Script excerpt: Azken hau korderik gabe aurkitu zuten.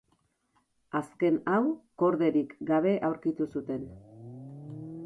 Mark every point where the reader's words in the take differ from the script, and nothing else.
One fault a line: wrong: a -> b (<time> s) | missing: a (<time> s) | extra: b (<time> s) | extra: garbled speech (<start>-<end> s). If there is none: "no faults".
no faults